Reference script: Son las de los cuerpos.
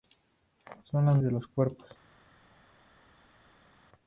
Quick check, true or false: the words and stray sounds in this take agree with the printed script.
true